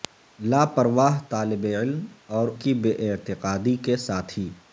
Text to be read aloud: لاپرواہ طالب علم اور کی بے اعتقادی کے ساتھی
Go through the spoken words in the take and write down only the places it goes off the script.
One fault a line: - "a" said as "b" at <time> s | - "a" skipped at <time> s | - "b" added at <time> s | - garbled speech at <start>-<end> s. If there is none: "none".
none